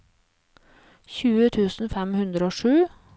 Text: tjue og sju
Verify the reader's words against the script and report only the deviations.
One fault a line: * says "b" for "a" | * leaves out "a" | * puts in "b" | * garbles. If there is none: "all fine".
* puts in "tusen fem hundre"